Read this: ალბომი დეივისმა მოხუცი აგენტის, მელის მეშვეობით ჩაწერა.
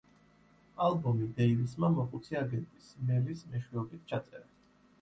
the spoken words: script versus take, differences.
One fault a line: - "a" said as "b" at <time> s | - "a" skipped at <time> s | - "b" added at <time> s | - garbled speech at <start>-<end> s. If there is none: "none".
none